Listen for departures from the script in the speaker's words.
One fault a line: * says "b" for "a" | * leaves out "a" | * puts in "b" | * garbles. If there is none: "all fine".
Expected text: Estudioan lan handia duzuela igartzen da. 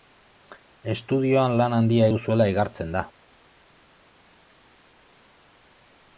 all fine